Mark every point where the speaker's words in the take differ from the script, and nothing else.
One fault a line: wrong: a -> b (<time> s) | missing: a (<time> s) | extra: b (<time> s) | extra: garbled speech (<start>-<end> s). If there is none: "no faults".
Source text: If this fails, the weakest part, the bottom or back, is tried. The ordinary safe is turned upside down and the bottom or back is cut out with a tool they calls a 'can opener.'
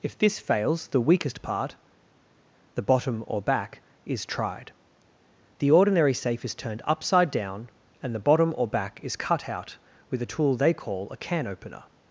wrong: calls -> call (10.7 s)